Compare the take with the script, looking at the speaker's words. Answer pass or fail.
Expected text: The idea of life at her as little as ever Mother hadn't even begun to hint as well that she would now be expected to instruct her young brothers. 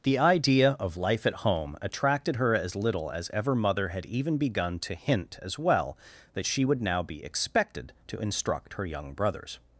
fail